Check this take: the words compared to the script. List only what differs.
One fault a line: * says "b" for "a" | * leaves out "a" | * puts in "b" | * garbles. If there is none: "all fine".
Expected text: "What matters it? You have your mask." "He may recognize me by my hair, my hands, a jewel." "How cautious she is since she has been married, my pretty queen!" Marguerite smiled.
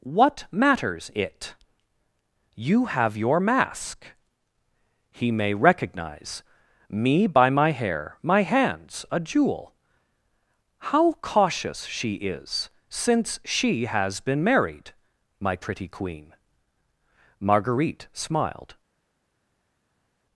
all fine